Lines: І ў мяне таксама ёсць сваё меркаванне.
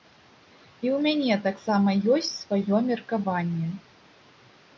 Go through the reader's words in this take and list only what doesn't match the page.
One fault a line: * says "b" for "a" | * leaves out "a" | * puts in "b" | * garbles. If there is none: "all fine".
all fine